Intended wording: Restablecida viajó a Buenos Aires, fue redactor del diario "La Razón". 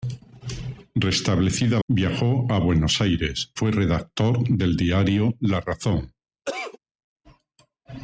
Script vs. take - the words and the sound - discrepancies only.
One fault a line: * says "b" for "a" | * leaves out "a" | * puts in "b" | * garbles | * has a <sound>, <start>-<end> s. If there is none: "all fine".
* has a cough, 6.4-6.8 s